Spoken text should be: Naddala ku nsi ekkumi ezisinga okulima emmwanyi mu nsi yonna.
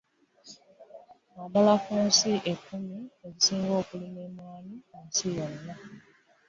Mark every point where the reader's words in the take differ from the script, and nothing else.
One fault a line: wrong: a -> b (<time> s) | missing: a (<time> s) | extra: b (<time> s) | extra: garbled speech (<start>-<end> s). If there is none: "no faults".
no faults